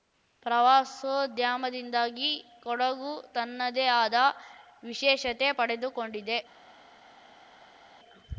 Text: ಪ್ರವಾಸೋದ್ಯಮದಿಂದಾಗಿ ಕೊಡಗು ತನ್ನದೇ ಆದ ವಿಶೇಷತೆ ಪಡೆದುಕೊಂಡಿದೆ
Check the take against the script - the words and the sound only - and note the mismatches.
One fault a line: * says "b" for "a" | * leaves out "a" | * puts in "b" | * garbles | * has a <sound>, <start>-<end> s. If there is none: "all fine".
all fine